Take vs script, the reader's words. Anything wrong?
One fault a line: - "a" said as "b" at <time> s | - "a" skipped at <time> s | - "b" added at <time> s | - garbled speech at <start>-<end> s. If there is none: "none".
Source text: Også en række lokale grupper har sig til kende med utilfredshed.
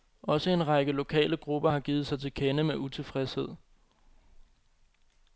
- "givet" added at 1.8 s